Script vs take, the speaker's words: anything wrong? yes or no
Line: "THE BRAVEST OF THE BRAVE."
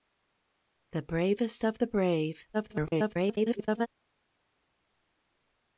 yes